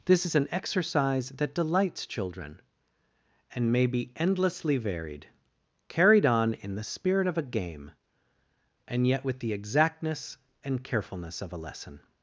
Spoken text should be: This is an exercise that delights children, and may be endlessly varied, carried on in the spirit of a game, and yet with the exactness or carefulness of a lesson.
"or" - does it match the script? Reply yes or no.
no